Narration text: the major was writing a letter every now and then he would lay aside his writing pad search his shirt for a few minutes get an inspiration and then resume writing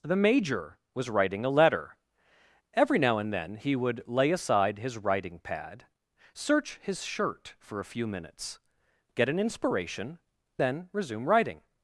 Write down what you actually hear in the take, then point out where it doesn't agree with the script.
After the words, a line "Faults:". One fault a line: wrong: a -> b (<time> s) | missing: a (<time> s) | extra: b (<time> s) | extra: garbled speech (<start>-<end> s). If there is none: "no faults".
the major was writing a letter every now and then he would lay aside his writing pad search his shirt for a few minutes get an inspiration then resume writing
Faults:
missing: and (10.2 s)